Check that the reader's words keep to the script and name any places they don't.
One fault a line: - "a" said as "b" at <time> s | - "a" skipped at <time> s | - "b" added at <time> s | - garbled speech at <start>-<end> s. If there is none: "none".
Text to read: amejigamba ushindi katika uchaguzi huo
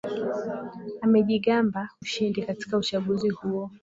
none